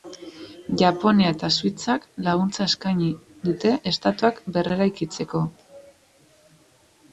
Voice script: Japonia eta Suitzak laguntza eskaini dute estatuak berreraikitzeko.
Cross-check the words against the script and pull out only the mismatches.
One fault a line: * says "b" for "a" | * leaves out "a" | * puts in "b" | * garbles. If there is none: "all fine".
all fine